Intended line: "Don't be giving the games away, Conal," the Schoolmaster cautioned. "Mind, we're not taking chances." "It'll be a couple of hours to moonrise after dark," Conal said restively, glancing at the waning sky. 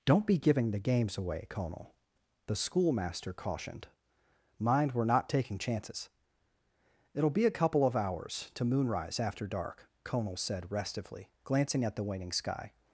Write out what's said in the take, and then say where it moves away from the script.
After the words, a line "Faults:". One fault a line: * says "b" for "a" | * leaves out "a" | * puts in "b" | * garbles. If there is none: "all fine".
"Don't be giving the games away, Conal," the Schoolmaster cautioned. "Mind, we're not taking chances." "It'll be a couple of hours to moonrise after dark," Conal said restively, glancing at the waning sky.
Faults:
all fine